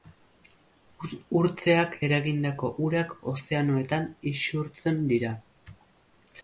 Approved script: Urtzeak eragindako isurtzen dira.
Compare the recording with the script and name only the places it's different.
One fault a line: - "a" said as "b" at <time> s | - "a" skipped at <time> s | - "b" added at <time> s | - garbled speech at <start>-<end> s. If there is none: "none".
- "urak ozeanoetan" added at 2.9 s